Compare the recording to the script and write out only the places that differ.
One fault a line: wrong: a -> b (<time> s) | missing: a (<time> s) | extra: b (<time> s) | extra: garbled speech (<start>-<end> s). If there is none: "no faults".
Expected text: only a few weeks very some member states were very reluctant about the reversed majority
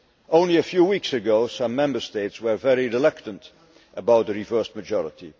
wrong: very -> ago (1.1 s)